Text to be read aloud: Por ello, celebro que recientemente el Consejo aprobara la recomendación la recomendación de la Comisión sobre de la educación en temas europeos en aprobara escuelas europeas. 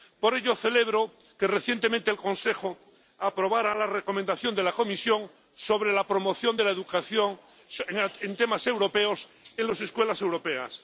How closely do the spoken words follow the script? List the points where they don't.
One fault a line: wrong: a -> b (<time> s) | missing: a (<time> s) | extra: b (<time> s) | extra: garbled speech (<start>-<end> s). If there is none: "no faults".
missing: la recomendación (4.5 s)
extra: la promoción (5.9 s)
wrong: aprobara -> las (9.7 s)